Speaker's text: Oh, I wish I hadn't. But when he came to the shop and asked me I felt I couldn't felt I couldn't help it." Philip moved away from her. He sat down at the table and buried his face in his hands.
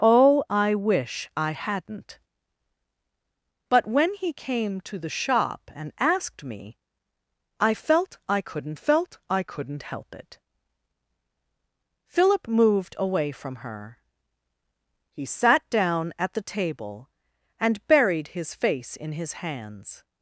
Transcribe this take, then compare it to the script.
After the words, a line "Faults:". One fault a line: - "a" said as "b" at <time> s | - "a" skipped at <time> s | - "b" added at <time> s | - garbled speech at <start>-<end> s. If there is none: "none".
Oh, I wish I hadn't. But when he came to the shop and asked me I felt I couldn't felt I couldn't help it." Philip moved away from her. He sat down at the table and buried his face in his hands.
Faults:
none